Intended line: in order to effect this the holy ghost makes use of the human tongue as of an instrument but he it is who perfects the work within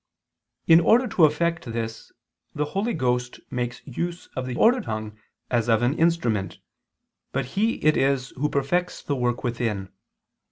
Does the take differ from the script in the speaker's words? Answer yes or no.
yes